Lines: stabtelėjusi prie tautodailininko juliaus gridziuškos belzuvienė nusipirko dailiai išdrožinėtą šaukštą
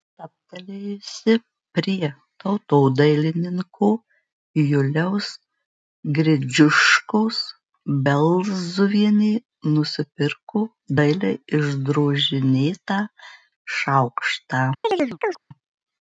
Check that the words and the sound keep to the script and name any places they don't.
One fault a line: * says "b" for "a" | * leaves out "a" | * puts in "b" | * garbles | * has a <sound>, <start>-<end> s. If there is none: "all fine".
* has a chirp, 14.8-15.4 s